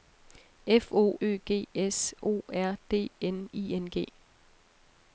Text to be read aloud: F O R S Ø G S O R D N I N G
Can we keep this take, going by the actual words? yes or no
no